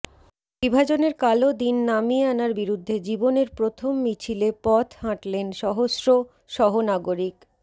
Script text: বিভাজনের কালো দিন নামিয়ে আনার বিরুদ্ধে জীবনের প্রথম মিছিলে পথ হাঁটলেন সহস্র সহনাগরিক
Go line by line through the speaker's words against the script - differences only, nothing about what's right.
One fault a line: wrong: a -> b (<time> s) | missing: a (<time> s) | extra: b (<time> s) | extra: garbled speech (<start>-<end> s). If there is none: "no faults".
no faults